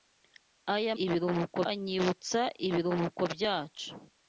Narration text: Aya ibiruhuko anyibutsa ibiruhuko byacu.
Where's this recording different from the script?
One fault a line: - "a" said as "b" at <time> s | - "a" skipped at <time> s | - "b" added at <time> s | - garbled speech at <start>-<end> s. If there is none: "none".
none